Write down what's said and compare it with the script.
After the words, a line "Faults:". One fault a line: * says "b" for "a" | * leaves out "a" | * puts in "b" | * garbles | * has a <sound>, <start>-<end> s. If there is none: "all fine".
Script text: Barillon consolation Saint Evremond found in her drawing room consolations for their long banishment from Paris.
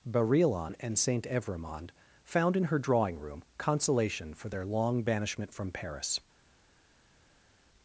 Barillon and Saint Evremond found in her drawing room consolation for their long banishment from Paris.
Faults:
* says "and" for "consolation"
* says "consolation" for "consolations"